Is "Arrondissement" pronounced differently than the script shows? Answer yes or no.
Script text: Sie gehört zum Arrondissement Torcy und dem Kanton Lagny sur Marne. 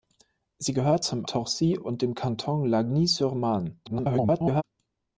yes